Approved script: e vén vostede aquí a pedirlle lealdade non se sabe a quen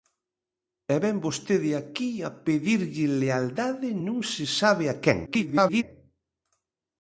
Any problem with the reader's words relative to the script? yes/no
yes